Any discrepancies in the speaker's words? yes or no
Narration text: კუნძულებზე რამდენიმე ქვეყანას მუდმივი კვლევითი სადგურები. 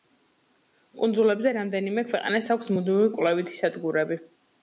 yes